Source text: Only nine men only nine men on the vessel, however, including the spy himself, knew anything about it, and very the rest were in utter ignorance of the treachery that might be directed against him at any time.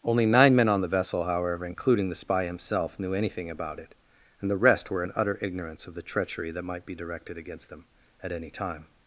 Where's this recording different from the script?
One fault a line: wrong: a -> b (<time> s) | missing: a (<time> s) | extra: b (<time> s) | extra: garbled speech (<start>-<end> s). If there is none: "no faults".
missing: only nine men (0.7 s)
missing: very (4.5 s)
wrong: him -> them (7.7 s)